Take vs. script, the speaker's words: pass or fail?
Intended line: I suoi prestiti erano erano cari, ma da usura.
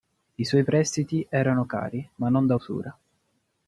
fail